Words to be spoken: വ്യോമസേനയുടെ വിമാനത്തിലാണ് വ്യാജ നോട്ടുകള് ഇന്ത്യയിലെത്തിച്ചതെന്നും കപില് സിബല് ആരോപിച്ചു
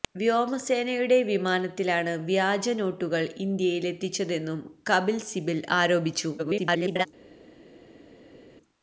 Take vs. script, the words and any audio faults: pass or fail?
fail